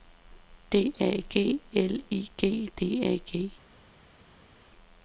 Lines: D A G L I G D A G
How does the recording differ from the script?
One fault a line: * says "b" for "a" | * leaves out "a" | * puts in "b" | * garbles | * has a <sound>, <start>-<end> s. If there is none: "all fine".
all fine